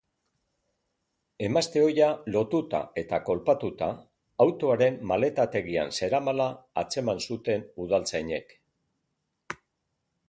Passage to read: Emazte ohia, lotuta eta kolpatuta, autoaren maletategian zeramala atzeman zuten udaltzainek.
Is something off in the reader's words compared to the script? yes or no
no